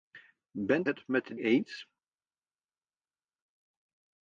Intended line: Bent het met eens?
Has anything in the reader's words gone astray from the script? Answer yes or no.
no